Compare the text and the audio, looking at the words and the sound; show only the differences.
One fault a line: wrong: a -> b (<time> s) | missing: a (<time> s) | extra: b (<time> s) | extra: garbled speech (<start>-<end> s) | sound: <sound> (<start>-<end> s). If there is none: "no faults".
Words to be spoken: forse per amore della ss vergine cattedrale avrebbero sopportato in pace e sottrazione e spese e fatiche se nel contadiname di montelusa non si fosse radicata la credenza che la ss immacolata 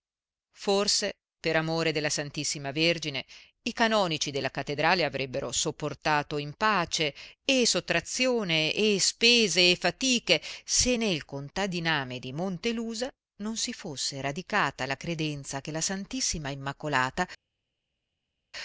extra: i canonici della (3.6 s)